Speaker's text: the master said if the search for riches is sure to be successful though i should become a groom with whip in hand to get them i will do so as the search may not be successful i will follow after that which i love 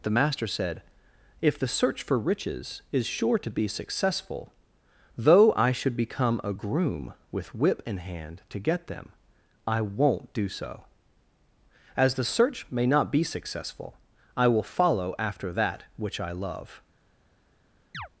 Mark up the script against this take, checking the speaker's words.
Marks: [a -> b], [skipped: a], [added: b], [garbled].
the master said if the search for riches is sure to be successful though i should become a groom with whip in hand to get them i [will -> won't] do so as the search may not be successful i will follow after that which i love